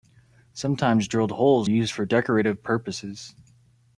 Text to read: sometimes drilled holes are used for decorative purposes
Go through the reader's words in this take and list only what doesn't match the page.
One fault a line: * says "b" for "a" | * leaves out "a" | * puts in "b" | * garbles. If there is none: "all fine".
* leaves out "are"